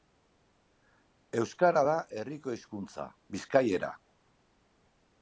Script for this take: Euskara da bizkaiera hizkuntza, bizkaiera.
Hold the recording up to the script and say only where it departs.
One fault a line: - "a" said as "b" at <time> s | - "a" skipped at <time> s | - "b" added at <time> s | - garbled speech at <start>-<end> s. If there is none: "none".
- "bizkaiera" said as "herriko" at 2.2 s